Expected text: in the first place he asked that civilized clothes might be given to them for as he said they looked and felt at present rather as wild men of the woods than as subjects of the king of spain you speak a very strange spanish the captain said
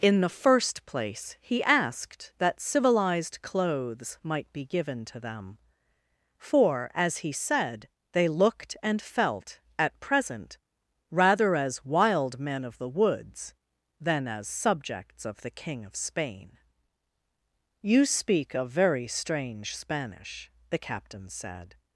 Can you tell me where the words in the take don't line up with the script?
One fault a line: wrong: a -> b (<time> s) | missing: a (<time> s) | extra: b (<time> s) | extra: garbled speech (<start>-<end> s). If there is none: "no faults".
no faults